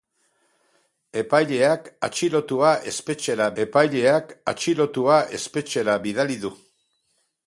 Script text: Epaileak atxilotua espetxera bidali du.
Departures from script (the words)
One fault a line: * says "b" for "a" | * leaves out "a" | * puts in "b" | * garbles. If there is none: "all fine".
* puts in "epaileak atxilotua espetxera"